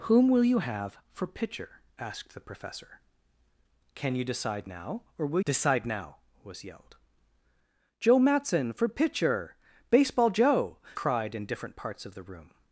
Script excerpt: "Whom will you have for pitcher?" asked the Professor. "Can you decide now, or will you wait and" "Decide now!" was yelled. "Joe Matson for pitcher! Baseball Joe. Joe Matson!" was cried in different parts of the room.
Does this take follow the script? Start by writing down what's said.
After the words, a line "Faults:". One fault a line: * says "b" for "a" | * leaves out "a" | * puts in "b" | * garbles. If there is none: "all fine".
"Whom will you have for pitcher?" asked the Professor. "Can you decide now, or will" "Decide now!" was yelled. "Joe Matson for pitcher! Baseball Joe. Cried in different parts of the room.
Faults:
* leaves out "you wait and"
* leaves out "Joe Matson was"